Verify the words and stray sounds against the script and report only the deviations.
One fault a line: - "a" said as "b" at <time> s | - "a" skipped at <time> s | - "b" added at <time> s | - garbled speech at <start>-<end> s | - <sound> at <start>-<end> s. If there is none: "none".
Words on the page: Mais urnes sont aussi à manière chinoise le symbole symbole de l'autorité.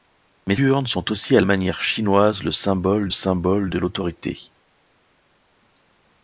none